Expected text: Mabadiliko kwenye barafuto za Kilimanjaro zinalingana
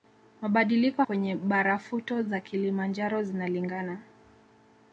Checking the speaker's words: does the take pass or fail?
pass